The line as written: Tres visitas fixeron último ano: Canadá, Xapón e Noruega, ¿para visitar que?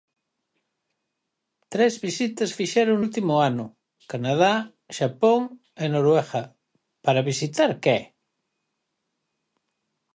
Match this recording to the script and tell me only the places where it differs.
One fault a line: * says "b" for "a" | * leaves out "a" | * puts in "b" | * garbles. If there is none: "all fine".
all fine